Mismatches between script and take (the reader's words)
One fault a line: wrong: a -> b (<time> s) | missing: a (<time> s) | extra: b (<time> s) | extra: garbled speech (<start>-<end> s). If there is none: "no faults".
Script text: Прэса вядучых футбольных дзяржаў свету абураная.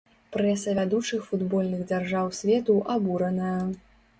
no faults